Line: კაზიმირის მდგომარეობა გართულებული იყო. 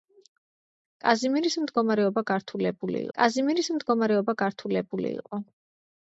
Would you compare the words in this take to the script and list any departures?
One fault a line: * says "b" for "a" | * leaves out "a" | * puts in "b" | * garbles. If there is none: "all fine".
* puts in "კაზიმირის მდგომარეობა გართულებული"